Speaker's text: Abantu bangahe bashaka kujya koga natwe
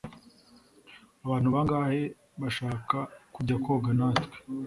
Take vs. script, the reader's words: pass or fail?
pass